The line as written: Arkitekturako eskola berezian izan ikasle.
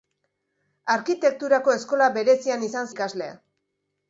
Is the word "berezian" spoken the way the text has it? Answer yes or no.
yes